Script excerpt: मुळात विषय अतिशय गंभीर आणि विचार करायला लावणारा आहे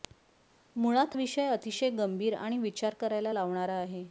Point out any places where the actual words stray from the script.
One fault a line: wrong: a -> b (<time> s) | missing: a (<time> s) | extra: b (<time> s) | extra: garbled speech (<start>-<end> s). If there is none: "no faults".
no faults